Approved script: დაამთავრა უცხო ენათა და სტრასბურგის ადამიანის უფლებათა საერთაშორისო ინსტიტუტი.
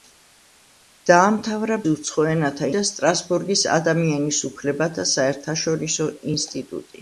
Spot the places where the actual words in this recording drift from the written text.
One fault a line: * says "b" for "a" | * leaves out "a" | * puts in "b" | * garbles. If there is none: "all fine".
all fine